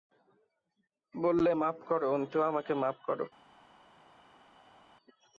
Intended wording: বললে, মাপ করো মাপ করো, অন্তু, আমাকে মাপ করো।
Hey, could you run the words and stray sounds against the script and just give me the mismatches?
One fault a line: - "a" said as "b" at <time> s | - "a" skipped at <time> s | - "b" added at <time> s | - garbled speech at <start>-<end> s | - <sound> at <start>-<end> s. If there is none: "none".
- "মাপ করো" skipped at 2.1 s